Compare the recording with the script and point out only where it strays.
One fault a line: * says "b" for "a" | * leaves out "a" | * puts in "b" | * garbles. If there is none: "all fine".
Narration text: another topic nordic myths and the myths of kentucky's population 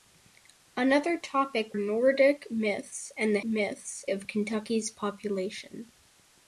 all fine